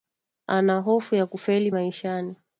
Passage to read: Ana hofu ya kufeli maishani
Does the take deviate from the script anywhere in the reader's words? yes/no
no